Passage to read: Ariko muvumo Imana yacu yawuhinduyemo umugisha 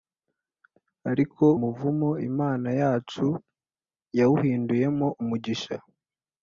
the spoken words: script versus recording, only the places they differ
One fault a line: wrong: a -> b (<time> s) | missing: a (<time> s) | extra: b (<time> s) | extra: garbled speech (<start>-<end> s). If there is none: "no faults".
no faults